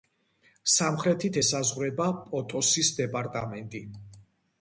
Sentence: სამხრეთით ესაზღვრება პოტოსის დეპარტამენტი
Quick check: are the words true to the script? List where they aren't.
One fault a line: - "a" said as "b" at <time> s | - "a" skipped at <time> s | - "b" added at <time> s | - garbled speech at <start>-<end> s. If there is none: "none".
none